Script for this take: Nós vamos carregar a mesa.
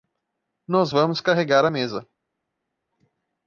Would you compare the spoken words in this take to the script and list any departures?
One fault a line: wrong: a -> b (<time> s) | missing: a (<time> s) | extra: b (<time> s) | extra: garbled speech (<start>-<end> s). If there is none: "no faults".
no faults